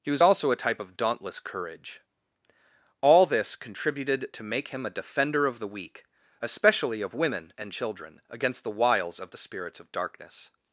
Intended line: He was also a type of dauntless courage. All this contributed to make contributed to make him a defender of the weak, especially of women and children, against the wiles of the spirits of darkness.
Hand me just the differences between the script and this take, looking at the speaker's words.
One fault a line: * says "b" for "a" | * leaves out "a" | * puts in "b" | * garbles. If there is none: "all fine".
* leaves out "contributed to make"